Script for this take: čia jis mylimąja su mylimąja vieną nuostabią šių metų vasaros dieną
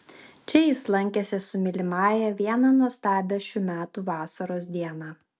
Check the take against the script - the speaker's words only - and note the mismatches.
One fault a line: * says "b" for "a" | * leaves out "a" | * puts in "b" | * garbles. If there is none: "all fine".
* says "lankėsi" for "mylimąja"